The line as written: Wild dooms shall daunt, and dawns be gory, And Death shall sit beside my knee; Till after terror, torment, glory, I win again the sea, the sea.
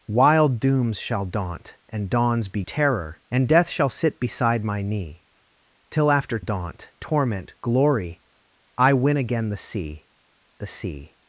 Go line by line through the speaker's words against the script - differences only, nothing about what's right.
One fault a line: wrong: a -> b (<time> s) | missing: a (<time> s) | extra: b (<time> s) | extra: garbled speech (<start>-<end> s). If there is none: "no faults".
wrong: gory -> terror (2.6 s)
wrong: terror -> daunt (6.4 s)